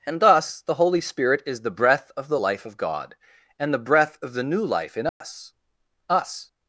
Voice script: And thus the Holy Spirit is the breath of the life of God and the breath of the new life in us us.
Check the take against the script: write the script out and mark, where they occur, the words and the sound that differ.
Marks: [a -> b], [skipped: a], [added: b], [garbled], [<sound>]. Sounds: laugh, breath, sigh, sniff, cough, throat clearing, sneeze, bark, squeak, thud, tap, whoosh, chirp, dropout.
And thus the Holy Spirit is the breath of the life of God and the breath of the new life in us [dropout] us.